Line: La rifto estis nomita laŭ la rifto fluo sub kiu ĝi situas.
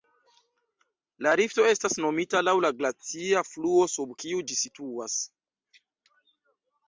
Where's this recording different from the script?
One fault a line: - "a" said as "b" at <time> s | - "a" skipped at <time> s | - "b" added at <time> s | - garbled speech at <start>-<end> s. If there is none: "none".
- "estis" said as "estas" at 1.7 s
- "rifto" said as "glacia" at 2.8 s